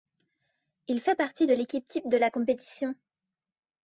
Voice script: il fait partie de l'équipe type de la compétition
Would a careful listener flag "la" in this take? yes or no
no